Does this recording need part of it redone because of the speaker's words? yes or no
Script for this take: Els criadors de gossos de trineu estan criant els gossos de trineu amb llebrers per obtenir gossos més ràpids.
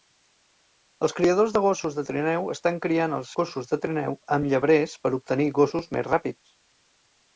no